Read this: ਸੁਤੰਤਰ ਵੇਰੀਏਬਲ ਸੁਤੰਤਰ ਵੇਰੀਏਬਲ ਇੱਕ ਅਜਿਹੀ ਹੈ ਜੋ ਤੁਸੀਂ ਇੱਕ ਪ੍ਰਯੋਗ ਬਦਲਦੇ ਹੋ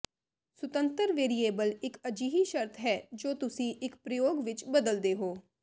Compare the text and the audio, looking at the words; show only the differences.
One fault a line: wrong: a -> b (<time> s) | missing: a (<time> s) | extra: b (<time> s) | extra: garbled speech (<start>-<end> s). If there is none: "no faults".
missing: ਸੁਤੰਤਰ ਵੇਰੀਏਬਲ (1.7 s)
extra: ਸ਼ਰਤ (2.4 s)
extra: ਵਿੱਚ (4.4 s)